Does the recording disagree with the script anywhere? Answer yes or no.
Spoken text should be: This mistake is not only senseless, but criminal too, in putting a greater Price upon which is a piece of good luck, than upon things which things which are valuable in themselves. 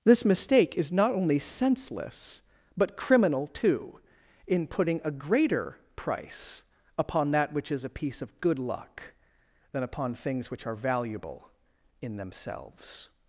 yes